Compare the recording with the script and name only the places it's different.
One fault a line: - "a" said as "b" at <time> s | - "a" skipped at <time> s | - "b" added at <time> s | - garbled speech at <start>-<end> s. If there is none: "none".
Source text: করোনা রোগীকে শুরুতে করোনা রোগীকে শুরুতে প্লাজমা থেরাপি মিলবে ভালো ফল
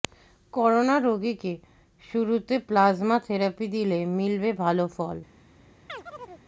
- "করোনা রোগীকে শুরুতে" skipped at 2.5 s
- "দিলে" added at 3.7 s